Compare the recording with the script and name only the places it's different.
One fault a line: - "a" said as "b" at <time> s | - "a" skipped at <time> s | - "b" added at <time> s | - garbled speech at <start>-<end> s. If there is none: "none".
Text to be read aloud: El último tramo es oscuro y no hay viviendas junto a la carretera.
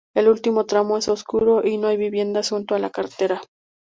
none